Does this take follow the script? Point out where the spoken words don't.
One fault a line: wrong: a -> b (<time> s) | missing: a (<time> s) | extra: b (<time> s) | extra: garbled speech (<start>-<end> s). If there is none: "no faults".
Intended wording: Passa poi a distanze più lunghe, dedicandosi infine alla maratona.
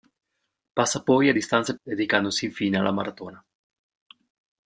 missing: più lunghe (1.7 s)